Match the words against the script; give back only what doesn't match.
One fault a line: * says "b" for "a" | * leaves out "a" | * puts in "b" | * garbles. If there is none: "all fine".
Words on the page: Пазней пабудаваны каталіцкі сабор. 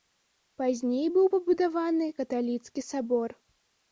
* puts in "быў"